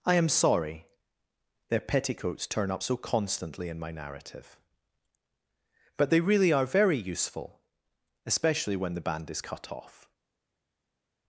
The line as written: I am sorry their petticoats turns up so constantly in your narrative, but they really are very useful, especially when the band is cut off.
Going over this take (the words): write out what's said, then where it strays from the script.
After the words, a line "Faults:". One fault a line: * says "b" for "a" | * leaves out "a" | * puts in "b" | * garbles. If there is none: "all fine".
I am sorry their petticoats turn up so constantly in my narrative, but they really are very useful, especially when the band is cut off.
Faults:
* says "turn" for "turns"
* says "my" for "your"